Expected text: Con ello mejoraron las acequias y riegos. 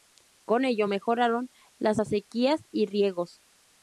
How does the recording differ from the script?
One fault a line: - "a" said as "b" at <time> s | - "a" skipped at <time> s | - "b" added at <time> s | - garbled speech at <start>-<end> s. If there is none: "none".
none